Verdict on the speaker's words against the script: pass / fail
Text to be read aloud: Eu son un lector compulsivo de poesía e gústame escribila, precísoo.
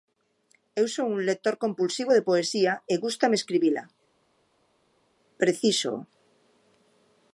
pass